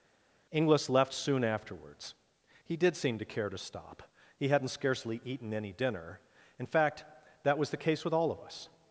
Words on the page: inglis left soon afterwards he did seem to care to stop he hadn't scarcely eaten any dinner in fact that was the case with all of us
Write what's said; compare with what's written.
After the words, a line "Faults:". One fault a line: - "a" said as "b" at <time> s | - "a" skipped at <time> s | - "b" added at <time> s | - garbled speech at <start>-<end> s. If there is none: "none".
inglis left soon afterwards he did seem to care to stop he hadn't scarcely eaten any dinner in fact that was the case with all of us
Faults:
none